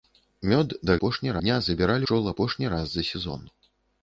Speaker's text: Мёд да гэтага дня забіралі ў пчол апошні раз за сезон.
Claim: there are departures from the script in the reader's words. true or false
true